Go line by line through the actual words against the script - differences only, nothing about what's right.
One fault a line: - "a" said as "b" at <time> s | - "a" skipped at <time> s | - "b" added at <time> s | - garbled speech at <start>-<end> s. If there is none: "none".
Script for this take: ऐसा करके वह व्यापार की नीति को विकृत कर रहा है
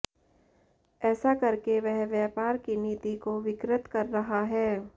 none